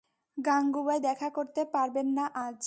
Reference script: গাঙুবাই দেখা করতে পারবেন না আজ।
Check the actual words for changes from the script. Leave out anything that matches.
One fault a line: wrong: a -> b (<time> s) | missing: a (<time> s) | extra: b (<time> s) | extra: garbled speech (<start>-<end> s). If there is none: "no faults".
no faults